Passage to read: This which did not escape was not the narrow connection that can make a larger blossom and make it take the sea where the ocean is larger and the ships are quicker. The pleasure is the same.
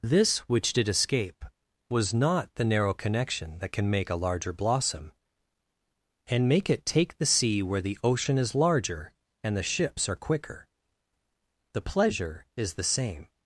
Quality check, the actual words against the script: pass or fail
fail